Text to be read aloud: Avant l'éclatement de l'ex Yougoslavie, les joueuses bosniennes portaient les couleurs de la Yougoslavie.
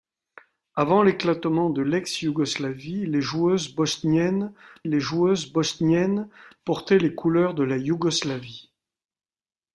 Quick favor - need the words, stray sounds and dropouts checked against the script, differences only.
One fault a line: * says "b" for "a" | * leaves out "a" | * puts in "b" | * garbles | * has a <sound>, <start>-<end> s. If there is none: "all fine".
* puts in "les joueuses bosniennes"